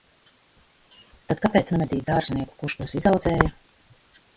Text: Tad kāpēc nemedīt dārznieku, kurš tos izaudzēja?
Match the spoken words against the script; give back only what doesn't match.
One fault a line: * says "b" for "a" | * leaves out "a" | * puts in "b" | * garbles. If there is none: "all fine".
all fine